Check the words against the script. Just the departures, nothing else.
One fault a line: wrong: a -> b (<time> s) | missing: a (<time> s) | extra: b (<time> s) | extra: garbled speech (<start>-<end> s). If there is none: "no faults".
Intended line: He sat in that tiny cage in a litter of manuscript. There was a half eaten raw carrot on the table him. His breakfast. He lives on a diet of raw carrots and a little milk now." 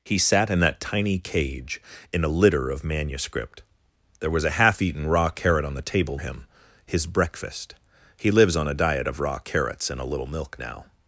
no faults